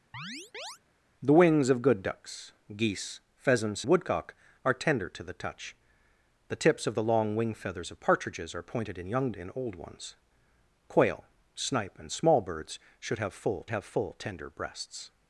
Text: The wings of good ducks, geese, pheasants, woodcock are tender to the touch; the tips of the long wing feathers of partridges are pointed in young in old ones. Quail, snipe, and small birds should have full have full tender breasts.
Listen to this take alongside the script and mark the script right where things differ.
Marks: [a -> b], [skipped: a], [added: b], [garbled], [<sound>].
[chirp] The wings of good ducks, geese, pheasants, woodcock are tender to the touch; the tips of the long wing feathers of partridges are pointed in young in old ones. Quail, snipe, and small birds should have full have full tender breasts.